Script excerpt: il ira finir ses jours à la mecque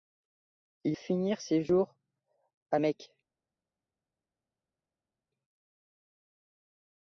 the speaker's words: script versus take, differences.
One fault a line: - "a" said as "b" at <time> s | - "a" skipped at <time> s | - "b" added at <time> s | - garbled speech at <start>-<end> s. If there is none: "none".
- "ira" skipped at 1.0 s
- "la" skipped at 2.8 s